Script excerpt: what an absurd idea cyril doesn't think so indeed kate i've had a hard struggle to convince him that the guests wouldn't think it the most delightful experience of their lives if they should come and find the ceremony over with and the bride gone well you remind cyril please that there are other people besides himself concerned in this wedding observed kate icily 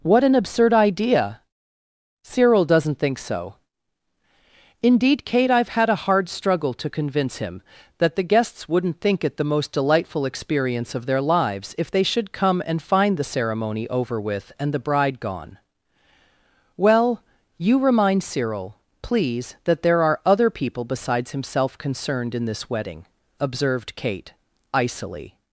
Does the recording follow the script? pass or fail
pass